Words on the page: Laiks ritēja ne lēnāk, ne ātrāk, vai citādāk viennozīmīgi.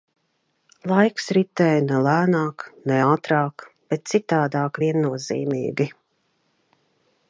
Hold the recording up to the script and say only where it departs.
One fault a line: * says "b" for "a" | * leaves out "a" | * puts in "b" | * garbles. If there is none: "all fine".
* says "bet" for "vai"